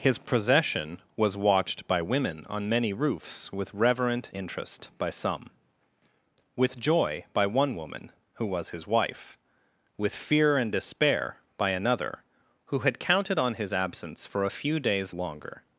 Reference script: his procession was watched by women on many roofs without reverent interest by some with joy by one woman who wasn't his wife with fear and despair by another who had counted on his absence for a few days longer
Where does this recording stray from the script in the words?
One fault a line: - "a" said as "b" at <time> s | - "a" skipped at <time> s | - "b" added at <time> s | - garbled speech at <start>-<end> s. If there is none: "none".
- "without" said as "with" at 3.5 s
- "wasn't" said as "was" at 8.4 s